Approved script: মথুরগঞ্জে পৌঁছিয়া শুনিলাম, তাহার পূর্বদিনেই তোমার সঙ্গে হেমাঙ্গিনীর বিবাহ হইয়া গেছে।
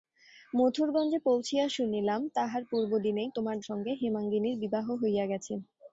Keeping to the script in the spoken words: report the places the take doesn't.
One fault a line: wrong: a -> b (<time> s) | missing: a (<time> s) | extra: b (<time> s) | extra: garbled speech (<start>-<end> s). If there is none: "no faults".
no faults